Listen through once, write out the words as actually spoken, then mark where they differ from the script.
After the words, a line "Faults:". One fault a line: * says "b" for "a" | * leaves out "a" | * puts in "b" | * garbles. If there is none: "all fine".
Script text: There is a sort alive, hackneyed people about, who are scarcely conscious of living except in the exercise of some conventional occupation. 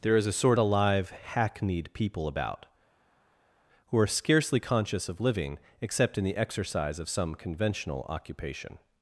There is a sort alive, hackneyed people about, who are scarcely conscious of living except in the exercise of some conventional occupation.
Faults:
all fine